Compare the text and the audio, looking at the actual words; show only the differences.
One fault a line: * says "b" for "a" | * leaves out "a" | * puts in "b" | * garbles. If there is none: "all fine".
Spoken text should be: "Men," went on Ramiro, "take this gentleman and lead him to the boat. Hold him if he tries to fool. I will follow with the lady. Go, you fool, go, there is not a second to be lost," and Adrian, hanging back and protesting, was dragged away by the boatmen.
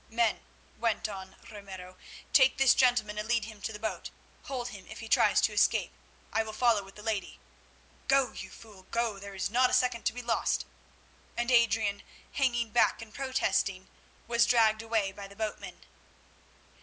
* says "escape" for "fool"